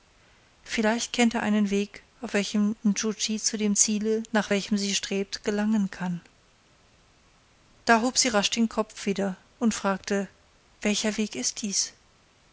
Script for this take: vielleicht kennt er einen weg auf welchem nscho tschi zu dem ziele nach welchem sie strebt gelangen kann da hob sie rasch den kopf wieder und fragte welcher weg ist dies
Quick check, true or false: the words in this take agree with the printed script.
true